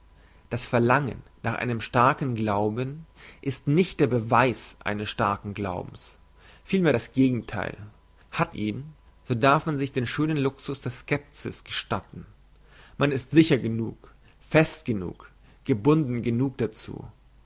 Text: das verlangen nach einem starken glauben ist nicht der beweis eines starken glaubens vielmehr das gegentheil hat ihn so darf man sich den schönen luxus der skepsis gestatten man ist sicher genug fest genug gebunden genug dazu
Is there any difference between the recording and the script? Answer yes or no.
no